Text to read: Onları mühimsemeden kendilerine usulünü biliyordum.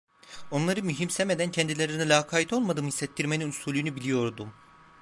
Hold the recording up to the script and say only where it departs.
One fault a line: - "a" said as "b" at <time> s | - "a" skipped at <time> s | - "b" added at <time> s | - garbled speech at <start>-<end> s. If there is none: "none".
- "lakayt olmadığımı hissettirmenin" added at 2.1 s